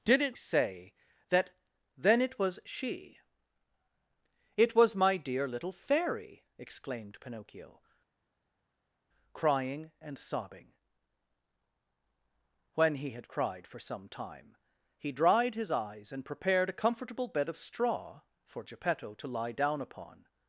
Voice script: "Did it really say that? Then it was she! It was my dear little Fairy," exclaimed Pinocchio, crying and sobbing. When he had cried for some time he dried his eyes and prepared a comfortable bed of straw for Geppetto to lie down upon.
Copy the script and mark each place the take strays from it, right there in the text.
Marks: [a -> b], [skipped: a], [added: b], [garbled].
"Did it [skipped: really] say that? Then it was she! It was my dear little Fairy," exclaimed Pinocchio, crying and sobbing. When he had cried for some time he dried his eyes and prepared a comfortable bed of straw for Geppetto to lie down upon.